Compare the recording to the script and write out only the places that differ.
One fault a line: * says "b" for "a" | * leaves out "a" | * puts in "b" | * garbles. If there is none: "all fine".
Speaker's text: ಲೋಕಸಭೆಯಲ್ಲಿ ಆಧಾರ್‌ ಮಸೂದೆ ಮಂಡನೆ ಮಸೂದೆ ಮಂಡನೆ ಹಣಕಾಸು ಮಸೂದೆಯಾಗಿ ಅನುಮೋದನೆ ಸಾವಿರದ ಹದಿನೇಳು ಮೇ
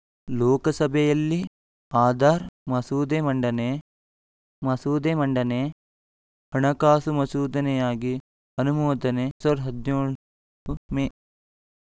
all fine